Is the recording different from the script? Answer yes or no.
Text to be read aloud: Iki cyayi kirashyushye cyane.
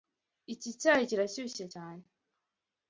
no